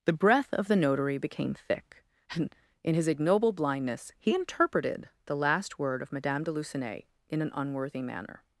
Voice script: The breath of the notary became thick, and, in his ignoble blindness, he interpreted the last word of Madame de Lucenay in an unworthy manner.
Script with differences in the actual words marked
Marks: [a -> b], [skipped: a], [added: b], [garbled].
The breath of the notary became thick, and, in his ignoble blindness, he interpreted the last word of Madame de Lucenay in an unworthy manner.